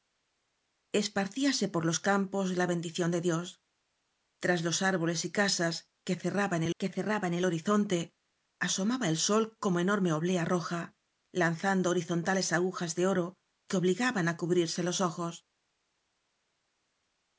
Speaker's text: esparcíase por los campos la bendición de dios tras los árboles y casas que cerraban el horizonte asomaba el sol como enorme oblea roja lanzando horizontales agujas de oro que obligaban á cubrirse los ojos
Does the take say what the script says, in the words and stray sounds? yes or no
no